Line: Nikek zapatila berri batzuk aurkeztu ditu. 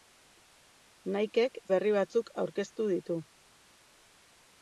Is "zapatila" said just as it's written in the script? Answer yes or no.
no